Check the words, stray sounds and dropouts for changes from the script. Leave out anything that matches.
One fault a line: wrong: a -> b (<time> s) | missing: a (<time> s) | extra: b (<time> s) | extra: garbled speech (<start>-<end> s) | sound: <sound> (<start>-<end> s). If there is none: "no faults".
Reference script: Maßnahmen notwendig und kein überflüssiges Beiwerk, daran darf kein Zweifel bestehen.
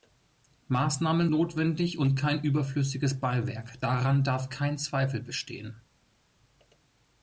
no faults